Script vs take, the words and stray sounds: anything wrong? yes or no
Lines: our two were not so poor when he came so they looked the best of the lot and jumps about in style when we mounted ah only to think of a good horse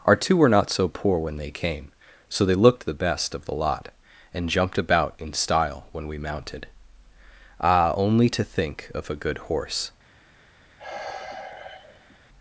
yes